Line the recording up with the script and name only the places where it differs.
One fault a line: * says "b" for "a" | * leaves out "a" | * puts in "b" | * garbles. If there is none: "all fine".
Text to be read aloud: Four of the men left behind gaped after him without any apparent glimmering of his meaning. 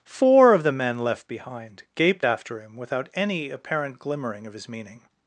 all fine